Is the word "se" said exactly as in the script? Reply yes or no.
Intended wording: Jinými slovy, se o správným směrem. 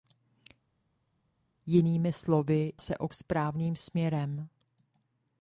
yes